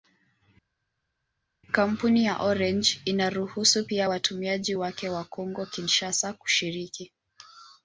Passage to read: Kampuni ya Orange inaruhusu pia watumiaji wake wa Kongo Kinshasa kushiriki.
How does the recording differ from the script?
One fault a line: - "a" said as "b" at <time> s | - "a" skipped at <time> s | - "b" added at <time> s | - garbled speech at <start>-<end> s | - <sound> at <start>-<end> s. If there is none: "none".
none